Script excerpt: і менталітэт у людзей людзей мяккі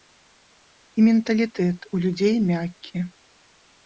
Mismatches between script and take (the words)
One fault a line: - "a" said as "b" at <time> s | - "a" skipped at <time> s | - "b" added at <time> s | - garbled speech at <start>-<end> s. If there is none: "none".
- "людзей" skipped at 2.4 s